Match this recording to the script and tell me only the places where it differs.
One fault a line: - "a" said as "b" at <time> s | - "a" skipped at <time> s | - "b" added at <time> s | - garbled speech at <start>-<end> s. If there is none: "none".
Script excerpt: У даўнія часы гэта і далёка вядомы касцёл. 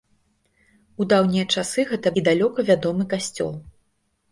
none